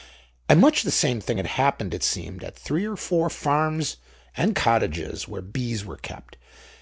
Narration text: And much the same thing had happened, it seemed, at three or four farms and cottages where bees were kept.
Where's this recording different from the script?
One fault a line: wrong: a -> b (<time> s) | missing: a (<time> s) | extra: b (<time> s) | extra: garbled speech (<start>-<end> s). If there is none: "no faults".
no faults